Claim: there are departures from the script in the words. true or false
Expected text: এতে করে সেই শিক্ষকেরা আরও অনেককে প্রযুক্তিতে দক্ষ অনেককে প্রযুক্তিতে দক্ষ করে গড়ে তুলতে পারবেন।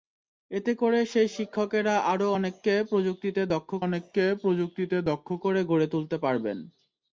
false